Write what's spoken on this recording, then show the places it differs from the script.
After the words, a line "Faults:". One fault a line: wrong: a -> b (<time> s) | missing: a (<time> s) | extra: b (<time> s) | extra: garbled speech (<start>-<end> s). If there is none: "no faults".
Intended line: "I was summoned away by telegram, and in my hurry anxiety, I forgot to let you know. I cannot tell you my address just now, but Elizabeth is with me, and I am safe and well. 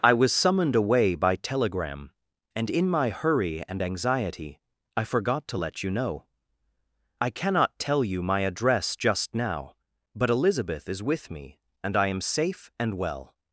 "I was summoned away by telegram, and in my hurry and anxiety, I forgot to let you know. I cannot tell you my address just now, but Elizabeth is with me, and I am safe and well.
Faults:
extra: and (3.7 s)